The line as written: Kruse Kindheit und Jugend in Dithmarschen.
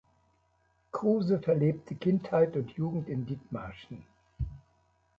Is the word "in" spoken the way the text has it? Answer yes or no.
yes